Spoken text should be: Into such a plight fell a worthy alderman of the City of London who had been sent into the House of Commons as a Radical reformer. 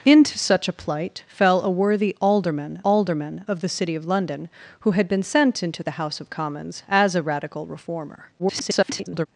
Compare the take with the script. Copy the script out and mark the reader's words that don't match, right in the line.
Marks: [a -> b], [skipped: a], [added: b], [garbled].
Into such a plight fell a worthy alderman [added: alderman] of the City of London who had been sent into the House of Commons as a Radical reformer. [garbled]